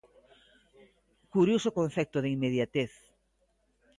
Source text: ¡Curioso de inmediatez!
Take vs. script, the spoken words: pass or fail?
fail